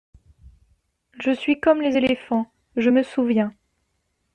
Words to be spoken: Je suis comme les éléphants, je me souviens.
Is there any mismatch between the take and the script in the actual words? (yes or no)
no